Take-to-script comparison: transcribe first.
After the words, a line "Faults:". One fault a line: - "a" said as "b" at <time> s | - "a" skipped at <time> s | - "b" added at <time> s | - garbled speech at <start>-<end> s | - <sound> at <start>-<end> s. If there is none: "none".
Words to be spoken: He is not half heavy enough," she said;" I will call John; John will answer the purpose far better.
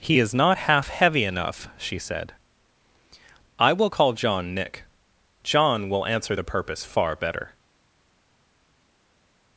He is not half heavy enough," she said;" I will call John; nick John will answer the purpose far better.
Faults:
- "nick" added at 4.5 s